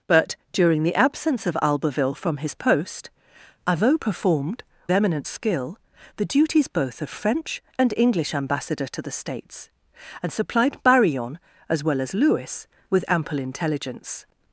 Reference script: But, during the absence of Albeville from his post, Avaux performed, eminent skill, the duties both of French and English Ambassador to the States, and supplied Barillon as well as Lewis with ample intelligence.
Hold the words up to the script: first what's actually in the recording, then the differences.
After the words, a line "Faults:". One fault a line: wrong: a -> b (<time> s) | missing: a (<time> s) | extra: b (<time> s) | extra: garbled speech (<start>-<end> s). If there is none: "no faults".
But, during the absence of Albeville from his post, Avaux performed, eminent skill, the duties both of French and English Ambassador to the States, and supplied Barillon as well as Lewis with ample intelligence.
Faults:
no faults